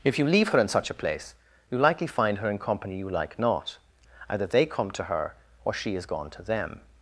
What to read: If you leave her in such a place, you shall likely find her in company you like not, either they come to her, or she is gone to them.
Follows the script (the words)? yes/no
no